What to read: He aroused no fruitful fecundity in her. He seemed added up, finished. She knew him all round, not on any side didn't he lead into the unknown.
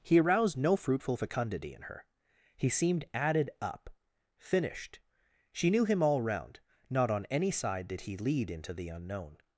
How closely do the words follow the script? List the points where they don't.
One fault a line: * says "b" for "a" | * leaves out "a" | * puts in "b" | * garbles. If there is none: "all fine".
* says "did" for "didn't"